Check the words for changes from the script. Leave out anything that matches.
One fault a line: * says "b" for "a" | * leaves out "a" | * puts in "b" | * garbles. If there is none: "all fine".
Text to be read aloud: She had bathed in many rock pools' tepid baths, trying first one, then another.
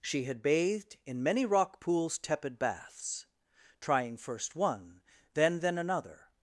* puts in "then"